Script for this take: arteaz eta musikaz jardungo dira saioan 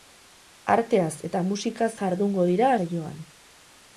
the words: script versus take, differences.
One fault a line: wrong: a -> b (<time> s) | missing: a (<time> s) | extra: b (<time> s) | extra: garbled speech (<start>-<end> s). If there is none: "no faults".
no faults